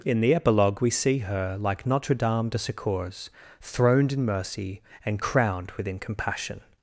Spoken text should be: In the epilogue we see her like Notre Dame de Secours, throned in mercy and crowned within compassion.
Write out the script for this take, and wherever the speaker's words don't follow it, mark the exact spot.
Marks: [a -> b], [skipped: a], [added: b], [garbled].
In the epilogue we see her like Notre Dame de Secours, throned in mercy and crowned within compassion.